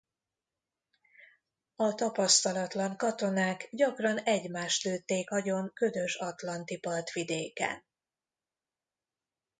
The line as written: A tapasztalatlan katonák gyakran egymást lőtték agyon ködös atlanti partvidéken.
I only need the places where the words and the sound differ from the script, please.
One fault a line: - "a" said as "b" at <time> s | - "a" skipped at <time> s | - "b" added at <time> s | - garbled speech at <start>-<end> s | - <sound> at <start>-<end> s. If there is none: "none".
none